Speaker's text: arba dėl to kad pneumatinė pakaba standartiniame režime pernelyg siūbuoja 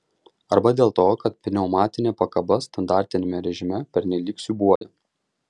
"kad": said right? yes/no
yes